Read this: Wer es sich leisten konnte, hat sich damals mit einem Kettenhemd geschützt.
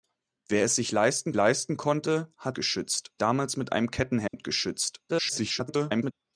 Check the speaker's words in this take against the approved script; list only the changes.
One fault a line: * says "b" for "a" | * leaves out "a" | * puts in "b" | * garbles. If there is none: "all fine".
* puts in "leisten"
* says "geschützt" for "sich"
* garbles